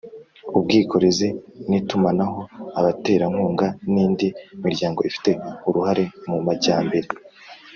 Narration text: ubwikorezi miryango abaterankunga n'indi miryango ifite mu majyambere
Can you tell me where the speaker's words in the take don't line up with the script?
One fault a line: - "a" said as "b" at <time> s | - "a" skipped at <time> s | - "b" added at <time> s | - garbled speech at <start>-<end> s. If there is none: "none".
- "miryango" said as "n'itumanaho" at 1.7 s
- "uruhare" added at 5.7 s